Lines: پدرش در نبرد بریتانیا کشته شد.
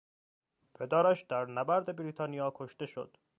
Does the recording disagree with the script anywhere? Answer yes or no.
no